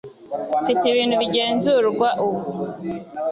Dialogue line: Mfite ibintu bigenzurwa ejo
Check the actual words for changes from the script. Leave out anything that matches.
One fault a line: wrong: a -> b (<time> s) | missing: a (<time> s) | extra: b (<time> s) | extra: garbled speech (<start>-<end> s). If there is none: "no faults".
wrong: ejo -> ubu (2.2 s)